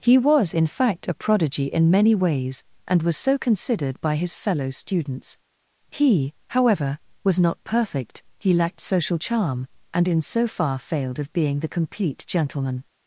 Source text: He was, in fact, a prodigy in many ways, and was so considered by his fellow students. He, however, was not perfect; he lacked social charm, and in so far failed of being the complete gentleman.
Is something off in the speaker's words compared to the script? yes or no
no